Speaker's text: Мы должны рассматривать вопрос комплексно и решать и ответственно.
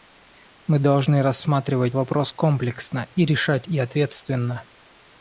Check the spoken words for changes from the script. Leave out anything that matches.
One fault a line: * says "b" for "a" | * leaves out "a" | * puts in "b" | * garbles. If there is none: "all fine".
all fine